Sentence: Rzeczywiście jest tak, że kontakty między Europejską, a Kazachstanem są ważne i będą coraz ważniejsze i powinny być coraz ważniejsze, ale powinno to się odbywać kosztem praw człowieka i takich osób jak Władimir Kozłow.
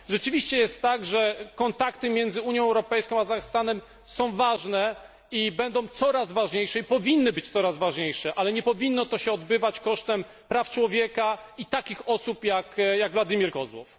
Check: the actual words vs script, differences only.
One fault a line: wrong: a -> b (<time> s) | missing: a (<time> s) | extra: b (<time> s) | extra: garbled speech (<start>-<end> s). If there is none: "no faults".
extra: Unią (2.4 s)
extra: nie (8.5 s)